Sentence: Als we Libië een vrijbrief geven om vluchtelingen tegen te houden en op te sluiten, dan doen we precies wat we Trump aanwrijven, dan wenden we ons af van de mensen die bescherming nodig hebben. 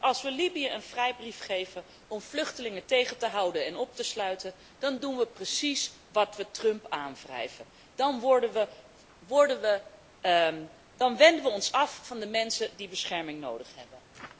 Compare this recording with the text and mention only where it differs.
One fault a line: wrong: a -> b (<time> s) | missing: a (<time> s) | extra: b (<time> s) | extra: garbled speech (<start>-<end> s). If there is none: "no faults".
no faults